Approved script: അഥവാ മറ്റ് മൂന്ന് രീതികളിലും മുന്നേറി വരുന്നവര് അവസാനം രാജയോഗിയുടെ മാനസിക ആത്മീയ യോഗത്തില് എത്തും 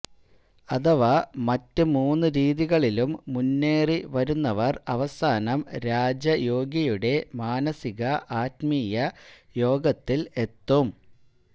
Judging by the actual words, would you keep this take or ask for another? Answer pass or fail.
pass